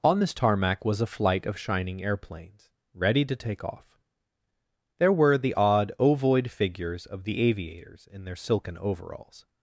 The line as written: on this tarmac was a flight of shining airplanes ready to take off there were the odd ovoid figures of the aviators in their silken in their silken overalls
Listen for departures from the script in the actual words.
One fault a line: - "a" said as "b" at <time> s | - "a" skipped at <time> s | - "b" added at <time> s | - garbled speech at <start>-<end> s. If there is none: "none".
- "in their silken" skipped at 8.8 s